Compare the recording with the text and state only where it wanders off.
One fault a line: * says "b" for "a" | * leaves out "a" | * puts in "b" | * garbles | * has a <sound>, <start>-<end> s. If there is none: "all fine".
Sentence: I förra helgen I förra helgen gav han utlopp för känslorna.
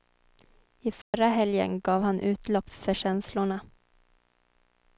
* has a dropout, 1.0-1.1 s
* leaves out "I förra helgen"